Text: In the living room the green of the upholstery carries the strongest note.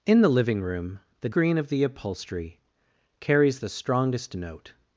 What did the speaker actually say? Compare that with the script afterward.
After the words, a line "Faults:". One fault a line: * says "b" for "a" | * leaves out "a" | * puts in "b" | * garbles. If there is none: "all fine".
In the living room the green of the upholstery carries the strongest note.
Faults:
all fine